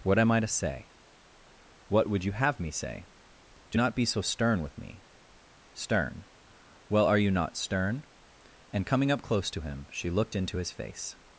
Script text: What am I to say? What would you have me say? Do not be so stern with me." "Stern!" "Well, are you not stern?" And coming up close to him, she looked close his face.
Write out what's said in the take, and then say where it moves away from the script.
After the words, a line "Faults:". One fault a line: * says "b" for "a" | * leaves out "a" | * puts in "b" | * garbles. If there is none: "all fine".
What am I to say? What would you have me say? Do not be so stern with me." "Stern!" "Well, are you not stern?" And coming up close to him, she looked into his face.
Faults:
* says "into" for "close"